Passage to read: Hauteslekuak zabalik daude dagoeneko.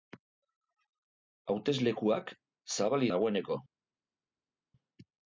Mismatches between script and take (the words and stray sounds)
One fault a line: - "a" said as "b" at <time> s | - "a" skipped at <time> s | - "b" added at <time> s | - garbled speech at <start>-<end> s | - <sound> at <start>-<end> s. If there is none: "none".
- "daude" skipped at 3.1 s